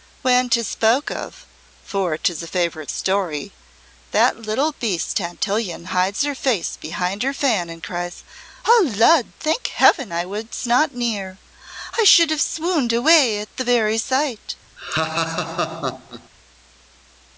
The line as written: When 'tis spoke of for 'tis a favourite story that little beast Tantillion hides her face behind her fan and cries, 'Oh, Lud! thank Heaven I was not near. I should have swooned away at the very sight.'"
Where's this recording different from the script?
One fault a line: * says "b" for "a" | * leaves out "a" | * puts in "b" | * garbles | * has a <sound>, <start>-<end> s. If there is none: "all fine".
* has a laugh, 14.8-16.3 s